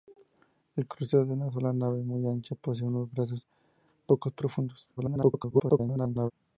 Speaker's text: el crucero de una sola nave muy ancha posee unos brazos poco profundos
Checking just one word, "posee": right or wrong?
right